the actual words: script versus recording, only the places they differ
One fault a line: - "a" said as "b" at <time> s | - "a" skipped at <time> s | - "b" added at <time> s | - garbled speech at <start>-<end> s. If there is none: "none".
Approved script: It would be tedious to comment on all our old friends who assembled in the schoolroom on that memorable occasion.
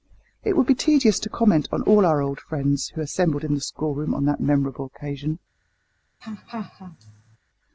none